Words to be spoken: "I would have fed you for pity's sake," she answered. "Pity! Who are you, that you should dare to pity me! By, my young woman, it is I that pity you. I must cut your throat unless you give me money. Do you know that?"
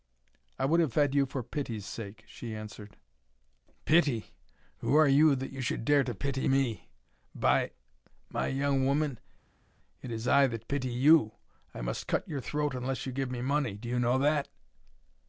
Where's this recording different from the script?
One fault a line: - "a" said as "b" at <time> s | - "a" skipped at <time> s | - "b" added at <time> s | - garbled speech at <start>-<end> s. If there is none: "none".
none